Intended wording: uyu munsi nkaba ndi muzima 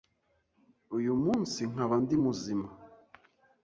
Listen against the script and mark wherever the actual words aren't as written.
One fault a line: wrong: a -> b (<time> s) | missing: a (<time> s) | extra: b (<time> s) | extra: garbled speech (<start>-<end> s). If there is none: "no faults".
no faults